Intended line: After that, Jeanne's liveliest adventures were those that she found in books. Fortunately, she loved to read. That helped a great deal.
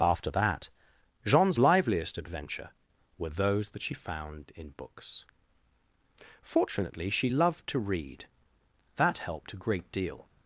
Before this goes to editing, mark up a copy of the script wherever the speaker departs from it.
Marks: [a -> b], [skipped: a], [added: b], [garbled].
After that, Jeanne's liveliest [adventures -> adventure] were those that she found in books. Fortunately, she loved to read. That helped a great deal.